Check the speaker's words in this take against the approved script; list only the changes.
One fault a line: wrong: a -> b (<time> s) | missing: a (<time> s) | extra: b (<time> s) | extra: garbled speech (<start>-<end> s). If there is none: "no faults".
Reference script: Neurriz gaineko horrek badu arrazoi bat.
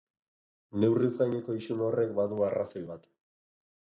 extra: isun (1.6 s)